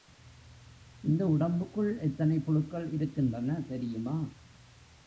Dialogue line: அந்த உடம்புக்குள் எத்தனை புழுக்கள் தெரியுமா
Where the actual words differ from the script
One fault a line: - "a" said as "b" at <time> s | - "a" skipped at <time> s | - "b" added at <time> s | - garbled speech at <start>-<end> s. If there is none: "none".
- "அந்த" said as "இந்த" at 1.0 s
- "இருக்கின்றன" added at 2.9 s